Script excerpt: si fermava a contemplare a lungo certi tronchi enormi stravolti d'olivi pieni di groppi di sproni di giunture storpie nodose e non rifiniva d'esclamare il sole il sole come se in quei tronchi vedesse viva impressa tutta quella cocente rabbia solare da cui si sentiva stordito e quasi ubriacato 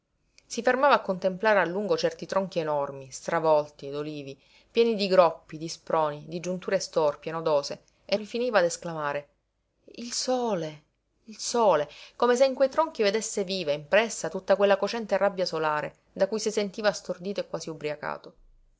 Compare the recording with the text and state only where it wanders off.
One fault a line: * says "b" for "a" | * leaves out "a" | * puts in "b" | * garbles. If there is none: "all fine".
* leaves out "non"